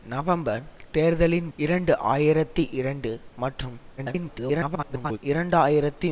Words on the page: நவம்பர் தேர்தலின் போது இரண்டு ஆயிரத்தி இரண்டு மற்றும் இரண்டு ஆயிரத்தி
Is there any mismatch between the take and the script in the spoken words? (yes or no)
yes